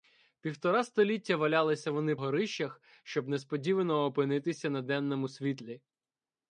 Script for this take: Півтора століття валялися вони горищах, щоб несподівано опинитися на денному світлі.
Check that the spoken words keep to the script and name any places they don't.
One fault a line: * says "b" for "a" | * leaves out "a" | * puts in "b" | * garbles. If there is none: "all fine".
all fine